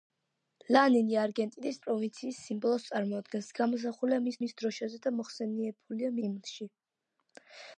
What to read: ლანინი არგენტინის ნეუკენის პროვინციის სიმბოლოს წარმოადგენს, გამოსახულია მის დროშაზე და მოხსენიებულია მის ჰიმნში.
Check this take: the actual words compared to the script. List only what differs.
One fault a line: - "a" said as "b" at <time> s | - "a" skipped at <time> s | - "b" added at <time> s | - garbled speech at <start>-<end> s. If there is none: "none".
- "ნეუკენის" skipped at 1.8 s
- "მის" added at 4.4 s
- "მის" skipped at 6.2 s